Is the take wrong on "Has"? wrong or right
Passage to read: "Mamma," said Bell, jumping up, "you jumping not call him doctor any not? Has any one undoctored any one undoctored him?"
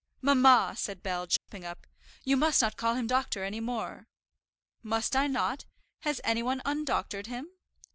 wrong